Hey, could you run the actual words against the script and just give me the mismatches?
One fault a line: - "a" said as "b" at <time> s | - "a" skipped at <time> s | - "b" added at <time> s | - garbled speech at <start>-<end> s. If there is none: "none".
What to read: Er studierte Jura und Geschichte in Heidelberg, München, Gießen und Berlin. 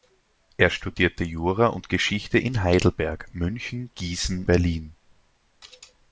- "und" skipped at 4.5 s